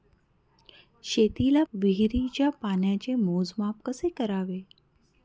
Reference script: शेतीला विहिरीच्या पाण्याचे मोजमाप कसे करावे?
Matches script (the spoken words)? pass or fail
pass